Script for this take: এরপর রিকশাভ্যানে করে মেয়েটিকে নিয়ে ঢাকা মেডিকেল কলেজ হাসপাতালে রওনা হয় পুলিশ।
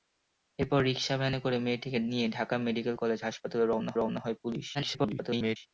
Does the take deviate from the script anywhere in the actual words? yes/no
yes